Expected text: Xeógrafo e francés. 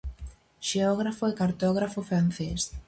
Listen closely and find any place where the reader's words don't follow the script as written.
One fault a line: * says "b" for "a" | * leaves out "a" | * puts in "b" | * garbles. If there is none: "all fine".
* puts in "cartógrafo"